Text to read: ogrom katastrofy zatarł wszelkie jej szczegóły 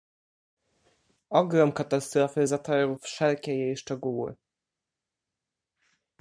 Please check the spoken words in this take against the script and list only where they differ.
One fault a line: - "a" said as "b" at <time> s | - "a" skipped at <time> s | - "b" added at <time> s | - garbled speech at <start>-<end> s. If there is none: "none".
none